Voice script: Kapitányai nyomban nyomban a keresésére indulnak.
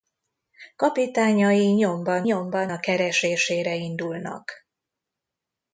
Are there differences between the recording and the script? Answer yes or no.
no